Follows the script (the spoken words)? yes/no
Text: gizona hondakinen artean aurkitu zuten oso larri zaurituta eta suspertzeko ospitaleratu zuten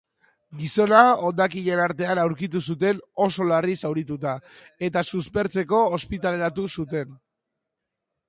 yes